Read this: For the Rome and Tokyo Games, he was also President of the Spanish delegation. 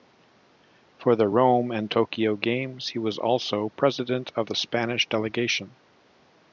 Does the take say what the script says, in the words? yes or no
yes